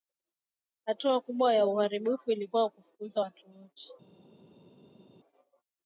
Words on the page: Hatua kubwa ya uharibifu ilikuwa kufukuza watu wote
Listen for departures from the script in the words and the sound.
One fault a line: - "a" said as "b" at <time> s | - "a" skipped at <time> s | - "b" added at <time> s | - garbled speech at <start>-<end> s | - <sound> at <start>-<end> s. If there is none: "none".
none